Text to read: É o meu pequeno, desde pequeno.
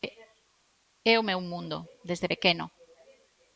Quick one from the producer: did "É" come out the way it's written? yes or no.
yes